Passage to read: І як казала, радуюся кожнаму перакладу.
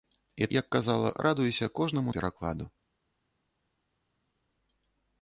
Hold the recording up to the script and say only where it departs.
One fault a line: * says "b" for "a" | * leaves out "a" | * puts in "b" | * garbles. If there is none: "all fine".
all fine